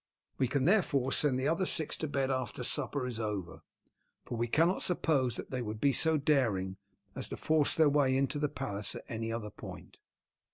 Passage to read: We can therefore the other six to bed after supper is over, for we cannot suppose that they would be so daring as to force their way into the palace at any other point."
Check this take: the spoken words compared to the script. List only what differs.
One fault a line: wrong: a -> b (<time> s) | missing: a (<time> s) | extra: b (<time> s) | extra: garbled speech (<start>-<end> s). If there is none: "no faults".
extra: send (1.1 s)